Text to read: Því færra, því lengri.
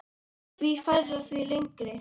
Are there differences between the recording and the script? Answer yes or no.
no